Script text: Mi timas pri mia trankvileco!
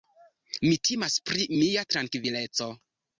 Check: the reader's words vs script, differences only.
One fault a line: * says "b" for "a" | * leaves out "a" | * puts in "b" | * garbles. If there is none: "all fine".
all fine